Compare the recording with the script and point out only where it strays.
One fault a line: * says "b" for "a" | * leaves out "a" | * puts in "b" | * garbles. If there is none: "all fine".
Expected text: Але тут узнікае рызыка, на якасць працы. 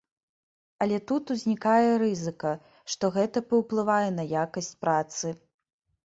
* puts in "што гэта паўплывае"